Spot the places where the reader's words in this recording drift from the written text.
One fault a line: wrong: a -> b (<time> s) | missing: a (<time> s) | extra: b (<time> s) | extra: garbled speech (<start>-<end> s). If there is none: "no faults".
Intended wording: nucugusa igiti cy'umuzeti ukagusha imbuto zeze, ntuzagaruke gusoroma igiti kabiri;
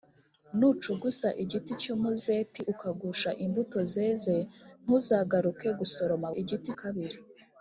no faults